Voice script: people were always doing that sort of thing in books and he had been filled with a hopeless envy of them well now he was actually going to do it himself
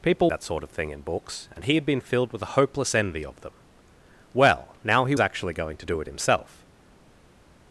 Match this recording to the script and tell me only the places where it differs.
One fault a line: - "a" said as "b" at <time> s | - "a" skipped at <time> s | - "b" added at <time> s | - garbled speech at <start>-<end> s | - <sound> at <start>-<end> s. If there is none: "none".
- "were always doing" skipped at 0.3 s
- "was" skipped at 5.1 s